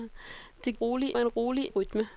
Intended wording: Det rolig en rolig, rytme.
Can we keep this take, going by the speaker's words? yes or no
yes